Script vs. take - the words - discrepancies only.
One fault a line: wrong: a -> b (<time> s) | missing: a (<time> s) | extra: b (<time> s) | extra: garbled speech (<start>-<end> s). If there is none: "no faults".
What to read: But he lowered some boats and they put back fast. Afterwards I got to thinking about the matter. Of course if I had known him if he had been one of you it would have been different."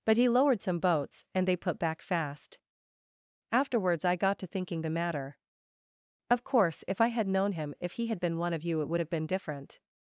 missing: about (4.8 s)